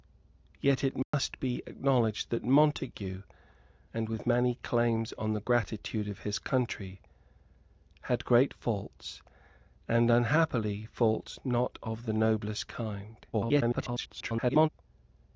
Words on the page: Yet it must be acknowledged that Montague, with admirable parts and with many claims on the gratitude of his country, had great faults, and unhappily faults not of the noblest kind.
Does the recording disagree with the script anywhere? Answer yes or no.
yes